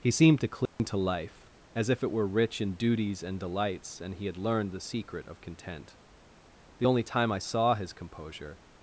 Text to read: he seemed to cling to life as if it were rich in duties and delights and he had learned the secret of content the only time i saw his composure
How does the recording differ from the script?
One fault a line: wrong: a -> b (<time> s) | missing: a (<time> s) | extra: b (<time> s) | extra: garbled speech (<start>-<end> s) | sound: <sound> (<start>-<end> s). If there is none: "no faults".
sound: dropout (0.7-0.8 s)